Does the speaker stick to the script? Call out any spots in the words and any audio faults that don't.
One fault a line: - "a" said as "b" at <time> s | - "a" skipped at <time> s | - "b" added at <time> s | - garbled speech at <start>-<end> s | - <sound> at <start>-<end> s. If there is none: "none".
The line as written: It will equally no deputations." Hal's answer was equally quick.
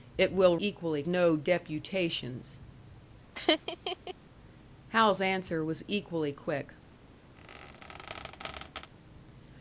- laugh at 3.4-4.1 s
- squeak at 7.4-8.9 s